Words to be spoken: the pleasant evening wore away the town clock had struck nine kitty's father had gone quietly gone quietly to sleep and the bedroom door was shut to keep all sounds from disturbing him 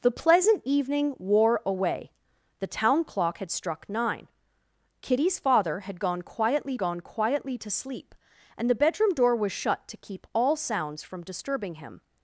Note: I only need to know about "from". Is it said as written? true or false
true